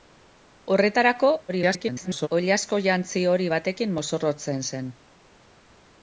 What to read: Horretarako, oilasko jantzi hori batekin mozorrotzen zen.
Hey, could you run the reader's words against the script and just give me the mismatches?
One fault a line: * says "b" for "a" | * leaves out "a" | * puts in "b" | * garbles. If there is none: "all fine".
* garbles